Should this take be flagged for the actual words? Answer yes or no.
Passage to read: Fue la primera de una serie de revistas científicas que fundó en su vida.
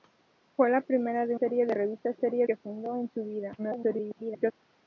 yes